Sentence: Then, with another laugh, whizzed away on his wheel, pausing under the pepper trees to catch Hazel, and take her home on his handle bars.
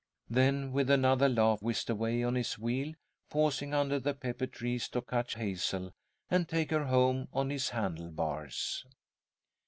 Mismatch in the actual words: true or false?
false